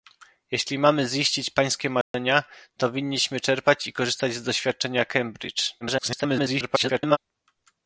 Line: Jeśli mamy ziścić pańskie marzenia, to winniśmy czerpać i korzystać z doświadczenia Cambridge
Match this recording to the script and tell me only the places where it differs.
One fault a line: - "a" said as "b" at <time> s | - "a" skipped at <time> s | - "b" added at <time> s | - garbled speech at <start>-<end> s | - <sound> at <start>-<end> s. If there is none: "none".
- dropout at 2.0-2.1 s
- garbled speech at 5.8-7.2 s